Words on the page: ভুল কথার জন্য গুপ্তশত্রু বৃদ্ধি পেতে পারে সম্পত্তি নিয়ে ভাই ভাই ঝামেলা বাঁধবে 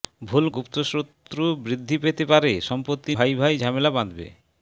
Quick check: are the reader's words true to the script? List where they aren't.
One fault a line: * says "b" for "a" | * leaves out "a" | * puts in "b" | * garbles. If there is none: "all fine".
* leaves out "কথার জন্য"
* leaves out "নিয়ে"